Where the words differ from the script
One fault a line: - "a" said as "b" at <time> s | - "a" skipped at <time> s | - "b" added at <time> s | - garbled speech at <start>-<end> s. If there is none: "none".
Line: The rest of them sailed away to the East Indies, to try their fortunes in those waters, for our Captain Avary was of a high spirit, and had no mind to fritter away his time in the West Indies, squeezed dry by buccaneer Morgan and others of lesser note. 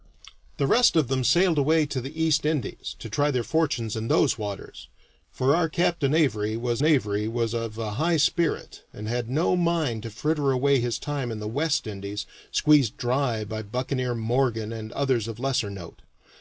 - "Avary was" added at 6.8 s